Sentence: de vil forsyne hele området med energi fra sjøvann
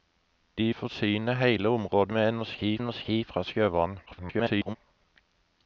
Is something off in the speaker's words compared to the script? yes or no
yes